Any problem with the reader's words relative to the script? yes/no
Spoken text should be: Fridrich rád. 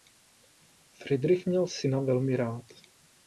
yes